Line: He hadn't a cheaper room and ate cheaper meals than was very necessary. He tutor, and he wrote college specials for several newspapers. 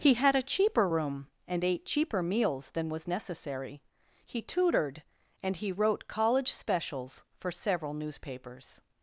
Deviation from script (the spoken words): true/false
true